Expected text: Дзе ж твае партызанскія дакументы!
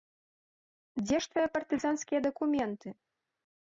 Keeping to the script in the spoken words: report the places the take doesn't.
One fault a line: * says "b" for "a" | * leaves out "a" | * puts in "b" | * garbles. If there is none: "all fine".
all fine